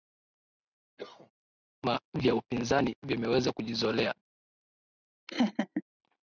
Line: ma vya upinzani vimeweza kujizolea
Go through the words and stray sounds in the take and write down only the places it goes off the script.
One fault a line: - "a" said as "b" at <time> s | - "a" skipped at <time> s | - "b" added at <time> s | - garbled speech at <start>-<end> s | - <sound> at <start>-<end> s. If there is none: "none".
- cough at 1.0-1.3 s
- laugh at 5.3-5.8 s